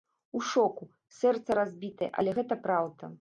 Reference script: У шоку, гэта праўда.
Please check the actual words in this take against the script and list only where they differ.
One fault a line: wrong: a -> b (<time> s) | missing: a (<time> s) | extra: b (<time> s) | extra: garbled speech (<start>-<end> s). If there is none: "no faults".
extra: сэрца разбітае але (1.2 s)